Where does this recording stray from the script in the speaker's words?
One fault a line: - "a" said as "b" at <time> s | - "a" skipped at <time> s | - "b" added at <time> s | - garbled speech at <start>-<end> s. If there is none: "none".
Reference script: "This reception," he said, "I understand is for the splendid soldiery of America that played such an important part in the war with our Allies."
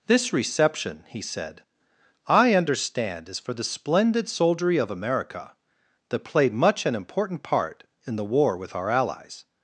- "such" said as "much" at 6.5 s